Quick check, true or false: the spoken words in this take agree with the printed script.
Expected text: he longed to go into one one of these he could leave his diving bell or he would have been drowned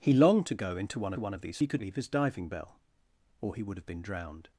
true